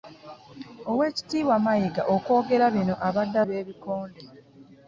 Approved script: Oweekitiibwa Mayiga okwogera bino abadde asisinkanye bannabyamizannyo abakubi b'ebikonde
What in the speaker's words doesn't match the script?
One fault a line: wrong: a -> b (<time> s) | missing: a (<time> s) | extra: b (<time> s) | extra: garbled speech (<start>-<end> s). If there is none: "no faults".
missing: asisinkanye bannabyamizannyo abakubi (3.4 s)